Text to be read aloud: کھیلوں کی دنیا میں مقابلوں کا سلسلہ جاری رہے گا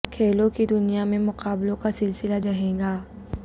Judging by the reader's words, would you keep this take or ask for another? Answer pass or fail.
fail